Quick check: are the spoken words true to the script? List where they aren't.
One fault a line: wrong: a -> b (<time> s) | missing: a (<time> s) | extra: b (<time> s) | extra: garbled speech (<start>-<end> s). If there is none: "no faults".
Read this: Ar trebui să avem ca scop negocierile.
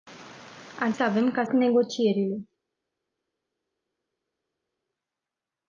missing: trebui (0.9 s)
missing: scop (1.4 s)